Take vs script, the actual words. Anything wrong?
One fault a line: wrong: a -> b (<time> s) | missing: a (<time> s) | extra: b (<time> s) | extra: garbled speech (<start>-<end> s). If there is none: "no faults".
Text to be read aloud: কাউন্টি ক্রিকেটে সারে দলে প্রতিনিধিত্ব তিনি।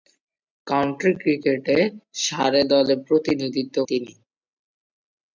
no faults